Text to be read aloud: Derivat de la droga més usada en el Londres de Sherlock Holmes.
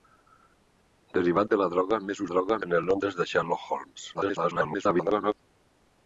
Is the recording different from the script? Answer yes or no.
yes